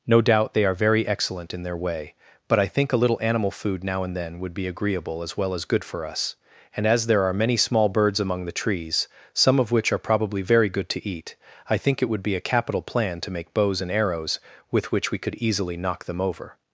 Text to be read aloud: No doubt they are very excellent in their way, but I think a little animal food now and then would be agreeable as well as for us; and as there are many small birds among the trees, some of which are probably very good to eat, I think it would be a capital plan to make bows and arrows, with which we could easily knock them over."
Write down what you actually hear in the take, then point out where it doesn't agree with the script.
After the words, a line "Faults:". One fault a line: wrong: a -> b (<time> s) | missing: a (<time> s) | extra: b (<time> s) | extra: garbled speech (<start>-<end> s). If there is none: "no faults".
No doubt they are very excellent in their way, but I think a little animal food now and then would be agreeable as well as good for us; and as there are many small birds among the trees, some of which are probably very good to eat, I think it would be a capital plan to make bows and arrows, with which we could easily knock them over."
Faults:
extra: good (5.7 s)